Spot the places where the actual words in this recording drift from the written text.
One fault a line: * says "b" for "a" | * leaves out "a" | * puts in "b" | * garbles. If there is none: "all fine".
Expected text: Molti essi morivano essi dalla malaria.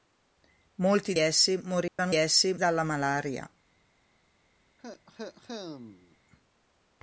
all fine